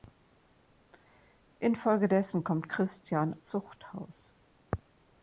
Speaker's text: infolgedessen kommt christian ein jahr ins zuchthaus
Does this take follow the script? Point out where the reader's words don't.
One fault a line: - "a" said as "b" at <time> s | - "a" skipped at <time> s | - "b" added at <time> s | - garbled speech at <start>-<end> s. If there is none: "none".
- "ein jahr ins" skipped at 3.4 s